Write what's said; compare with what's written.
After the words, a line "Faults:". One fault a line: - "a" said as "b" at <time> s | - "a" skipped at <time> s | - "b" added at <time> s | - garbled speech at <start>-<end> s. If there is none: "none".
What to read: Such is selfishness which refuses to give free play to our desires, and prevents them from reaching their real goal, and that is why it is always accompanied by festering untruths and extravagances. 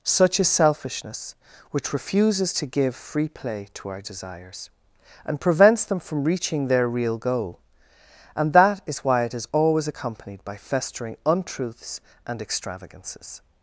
Such is selfishness which refuses to give free play to our desires, and prevents them from reaching their real goal, and that is why it is always accompanied by festering untruths and extravagances.
Faults:
none